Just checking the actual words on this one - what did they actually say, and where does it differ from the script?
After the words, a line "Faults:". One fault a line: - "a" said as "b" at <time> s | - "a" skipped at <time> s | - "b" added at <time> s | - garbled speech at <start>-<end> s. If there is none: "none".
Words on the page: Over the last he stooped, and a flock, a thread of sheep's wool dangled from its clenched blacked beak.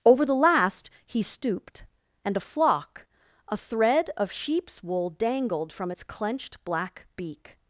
Over the last he stooped, and a flock, a thread of sheep's wool dangled from its clenched black beak.
Faults:
- "blacked" said as "black" at 6.6 s